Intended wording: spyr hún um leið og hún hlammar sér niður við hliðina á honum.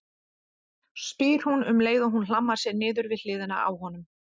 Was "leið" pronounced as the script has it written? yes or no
yes